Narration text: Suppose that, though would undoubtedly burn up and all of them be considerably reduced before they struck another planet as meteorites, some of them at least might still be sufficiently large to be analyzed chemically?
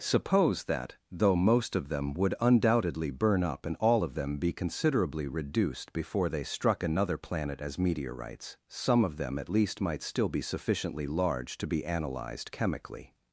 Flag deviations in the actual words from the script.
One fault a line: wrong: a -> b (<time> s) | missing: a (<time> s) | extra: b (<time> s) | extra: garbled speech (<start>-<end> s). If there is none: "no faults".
extra: most of them (1.4 s)